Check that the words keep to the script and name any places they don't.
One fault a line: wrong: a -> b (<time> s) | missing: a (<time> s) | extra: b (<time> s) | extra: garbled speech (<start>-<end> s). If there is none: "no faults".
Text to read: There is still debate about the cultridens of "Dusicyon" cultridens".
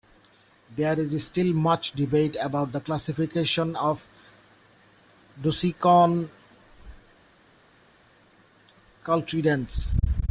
extra: much (1.5 s)
wrong: cultridens -> classification (2.8 s)